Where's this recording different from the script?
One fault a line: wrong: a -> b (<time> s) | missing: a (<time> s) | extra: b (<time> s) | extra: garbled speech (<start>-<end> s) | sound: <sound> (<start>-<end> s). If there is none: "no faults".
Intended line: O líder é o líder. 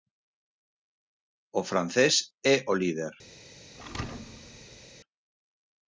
wrong: líder -> francés (1.7 s)
sound: thud (3.7-4.9 s)